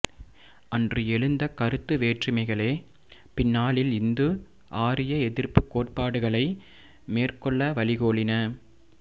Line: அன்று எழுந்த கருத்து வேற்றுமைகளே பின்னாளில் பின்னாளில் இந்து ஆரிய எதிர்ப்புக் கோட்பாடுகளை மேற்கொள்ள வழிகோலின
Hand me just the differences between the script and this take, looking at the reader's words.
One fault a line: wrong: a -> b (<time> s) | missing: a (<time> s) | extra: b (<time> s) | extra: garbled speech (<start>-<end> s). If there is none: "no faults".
missing: பின்னாளில் (3.9 s)